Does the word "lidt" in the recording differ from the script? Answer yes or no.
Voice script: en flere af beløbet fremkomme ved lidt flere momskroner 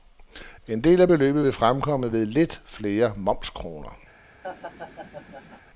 no